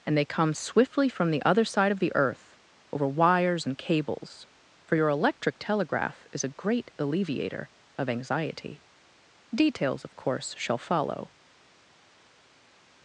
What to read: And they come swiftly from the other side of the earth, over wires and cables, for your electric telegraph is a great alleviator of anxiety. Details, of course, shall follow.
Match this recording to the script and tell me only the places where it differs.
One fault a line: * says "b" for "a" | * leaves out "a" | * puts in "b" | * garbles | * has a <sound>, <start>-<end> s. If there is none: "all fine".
all fine